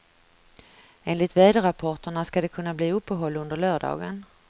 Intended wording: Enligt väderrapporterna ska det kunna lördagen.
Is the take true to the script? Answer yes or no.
no